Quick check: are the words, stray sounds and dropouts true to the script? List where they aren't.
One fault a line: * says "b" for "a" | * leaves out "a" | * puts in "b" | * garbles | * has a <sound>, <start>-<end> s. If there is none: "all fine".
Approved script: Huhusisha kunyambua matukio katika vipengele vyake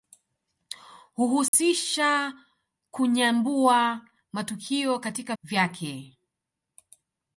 * has a dropout, 1.5-1.5 s
* leaves out "vipengele"